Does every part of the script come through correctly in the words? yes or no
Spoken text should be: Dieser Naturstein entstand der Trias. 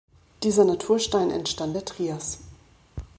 yes